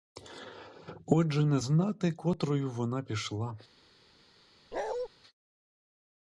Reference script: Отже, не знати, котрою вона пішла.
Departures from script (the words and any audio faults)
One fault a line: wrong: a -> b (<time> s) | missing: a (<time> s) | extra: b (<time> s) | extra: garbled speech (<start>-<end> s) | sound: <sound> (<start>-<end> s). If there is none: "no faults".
sound: bark (4.7-5.1 s)